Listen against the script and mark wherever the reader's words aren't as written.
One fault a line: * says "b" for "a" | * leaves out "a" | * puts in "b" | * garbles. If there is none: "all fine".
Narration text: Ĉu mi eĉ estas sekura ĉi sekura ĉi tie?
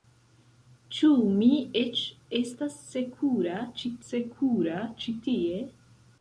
all fine